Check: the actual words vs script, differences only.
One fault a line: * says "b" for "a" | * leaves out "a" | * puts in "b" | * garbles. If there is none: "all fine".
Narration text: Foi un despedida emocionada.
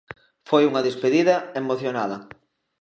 * says "unha" for "un"